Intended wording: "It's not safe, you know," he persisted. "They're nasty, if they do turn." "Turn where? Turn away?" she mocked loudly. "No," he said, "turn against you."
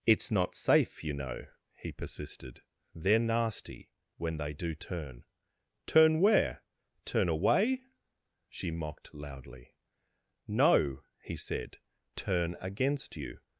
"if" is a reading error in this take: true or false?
true